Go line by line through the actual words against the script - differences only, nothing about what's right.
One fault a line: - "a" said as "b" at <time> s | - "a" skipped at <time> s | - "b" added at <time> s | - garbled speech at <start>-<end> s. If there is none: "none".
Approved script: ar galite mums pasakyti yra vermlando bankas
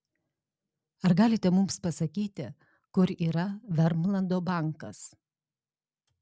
- "kur" added at 2.9 s